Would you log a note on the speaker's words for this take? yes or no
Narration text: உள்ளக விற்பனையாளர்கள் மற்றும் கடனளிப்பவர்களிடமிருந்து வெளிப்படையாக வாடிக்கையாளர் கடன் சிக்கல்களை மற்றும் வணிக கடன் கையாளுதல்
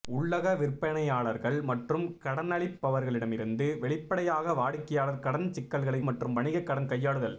no